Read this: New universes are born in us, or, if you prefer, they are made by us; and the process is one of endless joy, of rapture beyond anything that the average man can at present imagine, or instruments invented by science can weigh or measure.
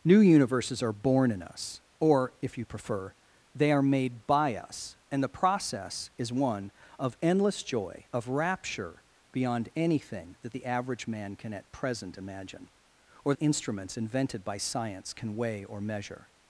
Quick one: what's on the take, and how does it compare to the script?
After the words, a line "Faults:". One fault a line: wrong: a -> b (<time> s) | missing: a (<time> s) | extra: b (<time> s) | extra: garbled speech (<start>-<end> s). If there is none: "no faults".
New universes are born in us, or, if you prefer, they are made by us; and the process is one of endless joy, of rapture beyond anything that the average man can at present imagine, or instruments invented by science can weigh or measure.
Faults:
no faults